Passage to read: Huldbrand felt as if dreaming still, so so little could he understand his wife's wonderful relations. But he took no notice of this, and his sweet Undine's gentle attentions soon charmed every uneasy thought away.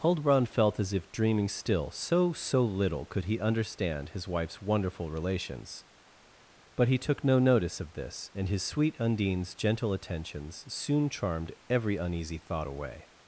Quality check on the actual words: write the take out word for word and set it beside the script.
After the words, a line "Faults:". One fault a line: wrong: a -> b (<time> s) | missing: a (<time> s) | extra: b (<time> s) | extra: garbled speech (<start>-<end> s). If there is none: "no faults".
Huldbrand felt as if dreaming still, so so little could he understand his wife's wonderful relations. But he took no notice of this, and his sweet Undine's gentle attentions soon charmed every uneasy thought away.
Faults:
no faults